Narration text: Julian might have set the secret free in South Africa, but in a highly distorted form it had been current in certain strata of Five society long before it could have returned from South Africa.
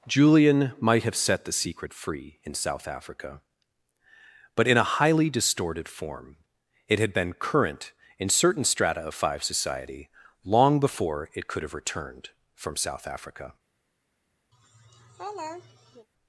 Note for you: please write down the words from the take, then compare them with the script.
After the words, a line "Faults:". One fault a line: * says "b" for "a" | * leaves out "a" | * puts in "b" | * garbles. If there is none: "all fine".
Julian might have set the secret free in South Africa, but in a highly distorted form it had been current in certain strata of Five society long before it could have returned from South Africa.
Faults:
all fine